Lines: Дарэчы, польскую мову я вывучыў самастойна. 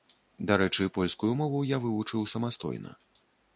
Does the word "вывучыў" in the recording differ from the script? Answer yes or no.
no